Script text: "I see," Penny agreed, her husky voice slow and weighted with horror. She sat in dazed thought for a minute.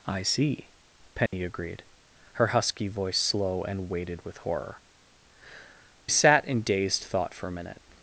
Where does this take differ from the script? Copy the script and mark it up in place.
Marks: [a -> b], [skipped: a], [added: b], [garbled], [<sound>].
"I see," Penny [dropout] agreed, her husky voice slow and weighted with horror. [skipped: She] sat in dazed thought for a minute.